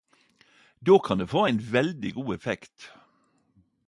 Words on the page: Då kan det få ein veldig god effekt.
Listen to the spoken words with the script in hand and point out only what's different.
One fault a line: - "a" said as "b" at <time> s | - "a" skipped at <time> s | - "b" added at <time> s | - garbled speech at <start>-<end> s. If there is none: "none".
none